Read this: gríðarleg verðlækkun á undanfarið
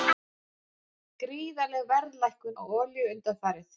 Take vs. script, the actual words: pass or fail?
fail